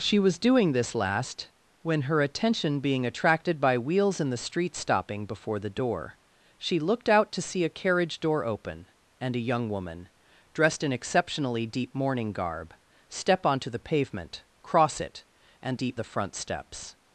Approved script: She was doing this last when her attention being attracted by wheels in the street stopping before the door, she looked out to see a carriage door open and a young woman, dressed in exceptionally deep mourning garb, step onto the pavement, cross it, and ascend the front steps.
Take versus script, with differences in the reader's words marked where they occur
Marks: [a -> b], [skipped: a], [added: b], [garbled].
She was doing this last when her attention being attracted by wheels in the street stopping before the door, she looked out to see a carriage door open and a young woman, dressed in exceptionally deep mourning garb, step onto the pavement, cross it, and [ascend -> deep] the front steps.